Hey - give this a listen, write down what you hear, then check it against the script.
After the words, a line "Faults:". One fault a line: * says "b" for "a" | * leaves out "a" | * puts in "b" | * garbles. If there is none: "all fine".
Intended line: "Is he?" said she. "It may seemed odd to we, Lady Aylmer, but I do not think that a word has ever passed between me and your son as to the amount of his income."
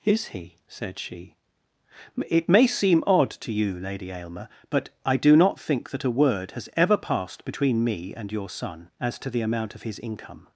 "Is he?" said she. "It may seem odd to you, Lady Aylmer, but I do not think that a word has ever passed between me and your son as to the amount of his income."
Faults:
* says "seem" for "seemed"
* says "you" for "we"